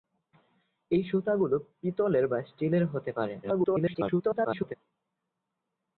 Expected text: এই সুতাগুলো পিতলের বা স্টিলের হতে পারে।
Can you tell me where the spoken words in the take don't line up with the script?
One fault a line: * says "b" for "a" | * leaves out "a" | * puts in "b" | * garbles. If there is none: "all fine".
* garbles